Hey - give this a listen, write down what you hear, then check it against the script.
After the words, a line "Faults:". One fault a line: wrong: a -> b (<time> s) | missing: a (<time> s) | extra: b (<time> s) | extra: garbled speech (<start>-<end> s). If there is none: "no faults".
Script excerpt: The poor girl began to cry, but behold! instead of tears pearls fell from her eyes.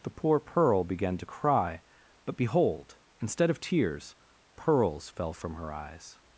The poor pearl began to cry, but behold! instead of tears pearls fell from her eyes.
Faults:
wrong: girl -> pearl (0.4 s)